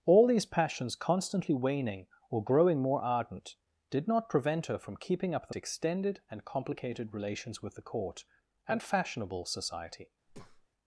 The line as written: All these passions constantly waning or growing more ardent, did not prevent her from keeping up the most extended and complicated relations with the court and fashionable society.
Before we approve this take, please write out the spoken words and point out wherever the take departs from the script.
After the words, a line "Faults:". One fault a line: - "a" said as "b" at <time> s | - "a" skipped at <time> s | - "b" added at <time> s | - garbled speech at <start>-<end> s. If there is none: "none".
All these passions constantly waning or growing more ardent, did not prevent her from keeping up the extended and complicated relations with the court and fashionable society.
Faults:
- "most" skipped at 5.5 s